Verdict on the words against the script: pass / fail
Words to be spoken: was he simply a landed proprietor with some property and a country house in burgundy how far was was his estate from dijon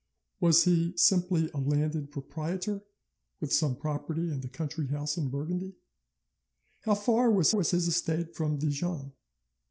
pass